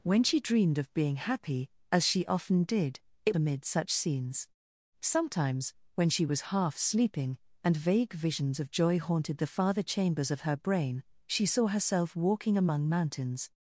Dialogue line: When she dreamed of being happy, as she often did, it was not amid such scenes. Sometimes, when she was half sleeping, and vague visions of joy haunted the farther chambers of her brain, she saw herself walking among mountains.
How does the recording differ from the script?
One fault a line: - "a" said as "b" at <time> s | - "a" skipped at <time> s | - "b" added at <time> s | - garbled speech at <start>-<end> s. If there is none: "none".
- "was not" skipped at 3.4 s